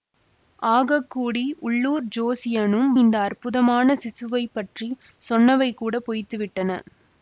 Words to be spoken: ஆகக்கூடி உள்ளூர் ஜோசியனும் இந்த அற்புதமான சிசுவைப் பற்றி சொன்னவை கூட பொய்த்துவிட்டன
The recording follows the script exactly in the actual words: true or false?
true